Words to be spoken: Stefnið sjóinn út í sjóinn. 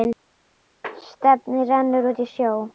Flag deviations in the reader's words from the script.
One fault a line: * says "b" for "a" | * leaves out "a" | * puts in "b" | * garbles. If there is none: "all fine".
* says "rennur" for "sjóinn"